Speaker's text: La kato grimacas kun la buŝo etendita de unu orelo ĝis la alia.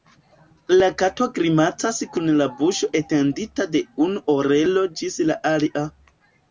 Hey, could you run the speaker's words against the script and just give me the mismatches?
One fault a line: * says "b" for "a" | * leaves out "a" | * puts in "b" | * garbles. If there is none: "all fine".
all fine